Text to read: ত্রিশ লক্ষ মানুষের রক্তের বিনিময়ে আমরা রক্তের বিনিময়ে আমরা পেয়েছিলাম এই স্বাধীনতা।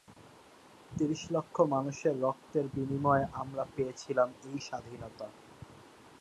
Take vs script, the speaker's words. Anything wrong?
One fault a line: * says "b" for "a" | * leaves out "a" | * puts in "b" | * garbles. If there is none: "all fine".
* leaves out "রক্তের বিনিময়ে আমরা"